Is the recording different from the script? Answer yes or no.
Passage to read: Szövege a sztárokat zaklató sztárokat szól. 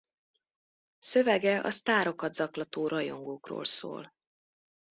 yes